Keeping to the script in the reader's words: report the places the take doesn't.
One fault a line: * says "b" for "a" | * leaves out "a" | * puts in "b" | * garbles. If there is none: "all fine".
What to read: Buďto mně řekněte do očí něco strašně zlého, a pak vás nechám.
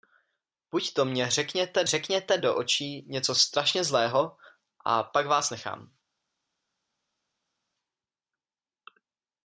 * puts in "řekněte"